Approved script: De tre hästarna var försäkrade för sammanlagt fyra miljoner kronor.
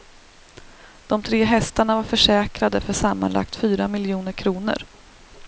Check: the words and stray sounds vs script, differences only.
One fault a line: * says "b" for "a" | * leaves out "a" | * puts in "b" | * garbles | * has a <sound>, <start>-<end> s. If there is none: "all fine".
all fine